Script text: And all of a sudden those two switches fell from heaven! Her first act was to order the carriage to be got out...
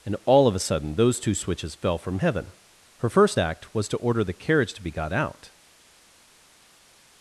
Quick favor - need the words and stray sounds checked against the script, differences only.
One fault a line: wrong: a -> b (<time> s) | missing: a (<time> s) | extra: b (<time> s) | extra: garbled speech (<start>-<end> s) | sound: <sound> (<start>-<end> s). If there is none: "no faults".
no faults